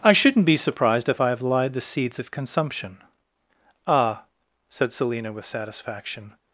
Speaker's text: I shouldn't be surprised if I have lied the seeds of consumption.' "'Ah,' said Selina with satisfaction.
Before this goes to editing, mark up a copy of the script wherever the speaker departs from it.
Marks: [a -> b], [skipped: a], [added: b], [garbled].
I shouldn't be surprised if I have lied the seeds of consumption.' "'Ah,' said Selina with satisfaction.